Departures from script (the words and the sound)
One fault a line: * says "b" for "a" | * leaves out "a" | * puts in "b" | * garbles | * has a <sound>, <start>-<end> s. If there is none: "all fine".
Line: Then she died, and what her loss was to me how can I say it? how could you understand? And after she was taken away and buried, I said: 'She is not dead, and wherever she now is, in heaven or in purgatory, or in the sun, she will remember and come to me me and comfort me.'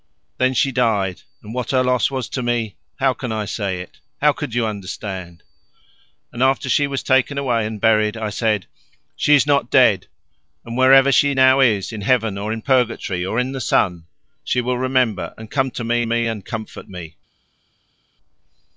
all fine